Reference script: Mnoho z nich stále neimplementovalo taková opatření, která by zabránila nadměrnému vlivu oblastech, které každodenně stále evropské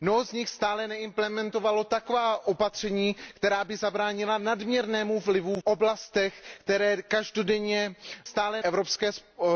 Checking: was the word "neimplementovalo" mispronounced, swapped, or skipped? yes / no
no